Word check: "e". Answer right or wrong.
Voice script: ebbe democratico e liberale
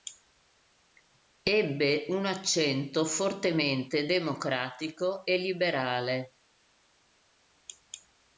right